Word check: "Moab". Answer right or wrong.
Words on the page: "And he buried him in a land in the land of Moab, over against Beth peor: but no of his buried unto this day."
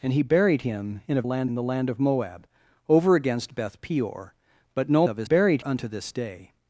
right